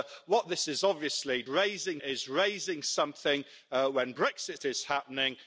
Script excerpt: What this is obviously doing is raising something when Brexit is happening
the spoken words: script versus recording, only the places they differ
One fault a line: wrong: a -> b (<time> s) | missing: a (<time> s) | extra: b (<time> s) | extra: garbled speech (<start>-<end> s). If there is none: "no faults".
wrong: doing -> raising (1.5 s)